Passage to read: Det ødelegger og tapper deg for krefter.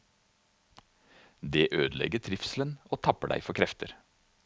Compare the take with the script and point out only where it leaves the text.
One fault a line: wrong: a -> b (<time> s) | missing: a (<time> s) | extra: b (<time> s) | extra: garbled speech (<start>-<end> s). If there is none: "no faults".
extra: trivselen (2.2 s)